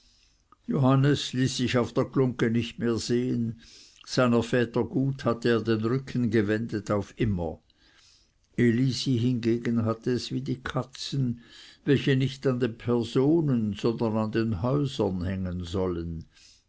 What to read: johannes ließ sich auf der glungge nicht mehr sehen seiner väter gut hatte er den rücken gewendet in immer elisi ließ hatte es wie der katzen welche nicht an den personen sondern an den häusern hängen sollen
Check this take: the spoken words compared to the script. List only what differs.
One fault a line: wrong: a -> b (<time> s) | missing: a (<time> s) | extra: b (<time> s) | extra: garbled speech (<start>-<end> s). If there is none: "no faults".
wrong: in -> auf (6.9 s)
wrong: ließ -> hingegen (9.2 s)
wrong: der -> die (10.4 s)